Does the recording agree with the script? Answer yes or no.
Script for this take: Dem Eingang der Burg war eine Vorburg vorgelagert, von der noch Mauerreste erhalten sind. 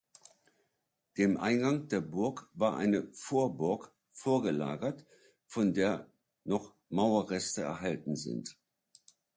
yes